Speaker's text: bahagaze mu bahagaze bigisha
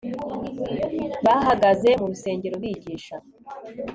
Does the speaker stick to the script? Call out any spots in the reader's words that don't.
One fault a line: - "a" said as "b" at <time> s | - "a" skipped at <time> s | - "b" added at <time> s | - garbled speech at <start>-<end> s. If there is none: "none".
- "bahagaze" said as "rusengero" at 2.1 s